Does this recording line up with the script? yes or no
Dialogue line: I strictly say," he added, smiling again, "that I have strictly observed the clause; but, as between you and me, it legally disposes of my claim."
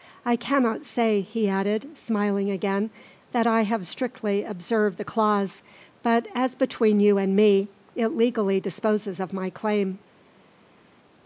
no